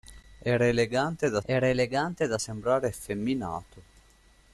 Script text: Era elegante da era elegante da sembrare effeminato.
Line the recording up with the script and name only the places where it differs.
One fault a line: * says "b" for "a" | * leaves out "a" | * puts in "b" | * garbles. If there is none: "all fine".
all fine